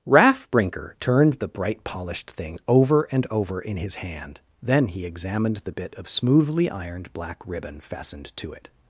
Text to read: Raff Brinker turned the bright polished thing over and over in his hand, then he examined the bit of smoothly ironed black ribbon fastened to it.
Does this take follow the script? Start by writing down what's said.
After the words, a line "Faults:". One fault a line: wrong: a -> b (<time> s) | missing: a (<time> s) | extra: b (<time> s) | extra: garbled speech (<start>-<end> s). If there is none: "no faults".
Raff Brinker turned the bright polished thing over and over in his hand, then he examined the bit of smoothly ironed black ribbon fastened to it.
Faults:
no faults